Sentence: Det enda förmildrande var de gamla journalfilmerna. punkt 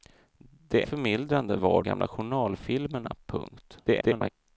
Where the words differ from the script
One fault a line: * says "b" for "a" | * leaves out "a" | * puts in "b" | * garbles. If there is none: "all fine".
* leaves out "enda"
* leaves out "de"
* garbles